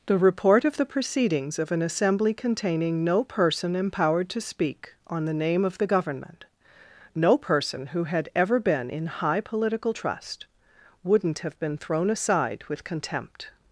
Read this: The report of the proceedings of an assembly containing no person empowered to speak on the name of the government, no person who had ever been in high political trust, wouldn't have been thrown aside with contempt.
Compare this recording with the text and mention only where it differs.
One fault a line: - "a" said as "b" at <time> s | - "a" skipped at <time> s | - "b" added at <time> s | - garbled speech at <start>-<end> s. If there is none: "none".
none